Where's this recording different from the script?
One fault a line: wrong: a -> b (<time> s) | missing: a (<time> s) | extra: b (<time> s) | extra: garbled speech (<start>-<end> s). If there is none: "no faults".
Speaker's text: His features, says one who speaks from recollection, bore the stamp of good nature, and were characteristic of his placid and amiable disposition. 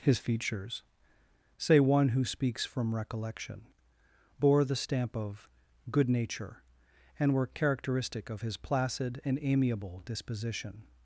wrong: says -> say (1.6 s)